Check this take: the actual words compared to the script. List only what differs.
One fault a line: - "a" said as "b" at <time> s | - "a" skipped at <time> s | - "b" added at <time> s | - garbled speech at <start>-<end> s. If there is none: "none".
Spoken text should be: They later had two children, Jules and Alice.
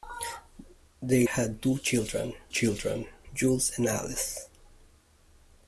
- "later" skipped at 1.3 s
- "children" added at 2.5 s